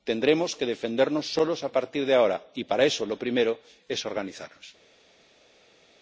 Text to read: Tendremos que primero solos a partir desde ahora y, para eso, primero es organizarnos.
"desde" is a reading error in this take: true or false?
true